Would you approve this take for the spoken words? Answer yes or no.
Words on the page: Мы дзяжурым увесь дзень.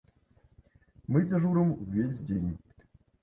yes